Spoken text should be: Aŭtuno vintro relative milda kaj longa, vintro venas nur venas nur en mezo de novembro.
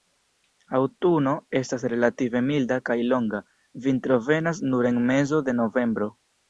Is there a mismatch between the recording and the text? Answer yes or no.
yes